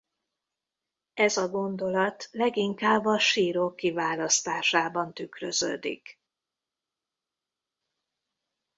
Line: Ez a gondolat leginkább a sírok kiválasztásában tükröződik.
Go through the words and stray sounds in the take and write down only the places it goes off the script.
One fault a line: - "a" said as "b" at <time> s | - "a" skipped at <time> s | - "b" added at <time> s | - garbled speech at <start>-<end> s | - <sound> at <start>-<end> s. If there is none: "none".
none